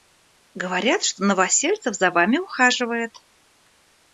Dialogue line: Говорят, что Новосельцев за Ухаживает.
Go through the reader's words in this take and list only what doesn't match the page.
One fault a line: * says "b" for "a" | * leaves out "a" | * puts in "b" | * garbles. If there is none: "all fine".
* puts in "Вами"